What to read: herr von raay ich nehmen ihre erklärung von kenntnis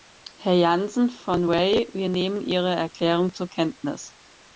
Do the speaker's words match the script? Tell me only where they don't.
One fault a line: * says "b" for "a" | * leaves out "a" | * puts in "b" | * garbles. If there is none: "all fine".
* puts in "janssen"
* says "wir" for "ich"
* says "zur" for "von"